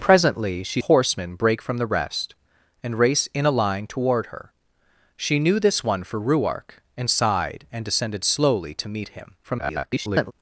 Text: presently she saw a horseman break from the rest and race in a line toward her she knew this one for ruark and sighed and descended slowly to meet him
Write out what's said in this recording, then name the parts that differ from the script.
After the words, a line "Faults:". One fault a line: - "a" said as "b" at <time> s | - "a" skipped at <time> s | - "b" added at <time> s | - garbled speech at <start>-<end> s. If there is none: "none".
presently she a horseman break from the rest and race in a line toward her she knew this one for ruark and sighed and descended slowly to meet him [garbled]
Faults:
- "saw" skipped at 0.8 s
- garbled speech at 9.4-10.3 s